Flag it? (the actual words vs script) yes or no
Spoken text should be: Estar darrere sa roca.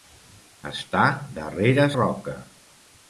yes